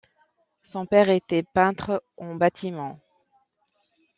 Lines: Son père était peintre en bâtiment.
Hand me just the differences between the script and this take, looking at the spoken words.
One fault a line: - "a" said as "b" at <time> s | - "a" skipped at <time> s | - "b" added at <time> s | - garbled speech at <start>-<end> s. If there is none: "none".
none